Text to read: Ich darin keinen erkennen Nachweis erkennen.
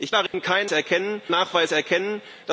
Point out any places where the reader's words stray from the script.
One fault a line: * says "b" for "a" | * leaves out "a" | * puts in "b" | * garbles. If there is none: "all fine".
all fine